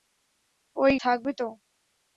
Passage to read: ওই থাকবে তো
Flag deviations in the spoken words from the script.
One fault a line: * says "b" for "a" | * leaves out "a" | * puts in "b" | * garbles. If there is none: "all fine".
all fine